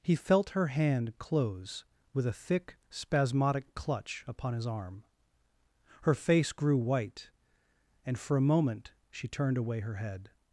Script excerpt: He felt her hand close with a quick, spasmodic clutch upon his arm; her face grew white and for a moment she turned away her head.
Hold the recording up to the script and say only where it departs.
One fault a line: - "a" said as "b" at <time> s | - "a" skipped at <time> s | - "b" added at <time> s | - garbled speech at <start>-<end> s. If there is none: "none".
- "quick" said as "thick" at 2.3 s